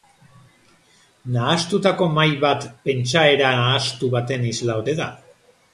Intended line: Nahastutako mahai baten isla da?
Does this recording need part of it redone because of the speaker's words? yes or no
yes